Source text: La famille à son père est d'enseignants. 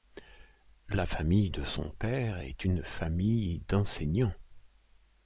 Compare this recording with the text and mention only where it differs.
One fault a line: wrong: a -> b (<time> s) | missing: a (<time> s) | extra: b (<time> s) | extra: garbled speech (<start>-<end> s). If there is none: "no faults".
wrong: à -> de (1.5 s)
extra: une famille (2.6 s)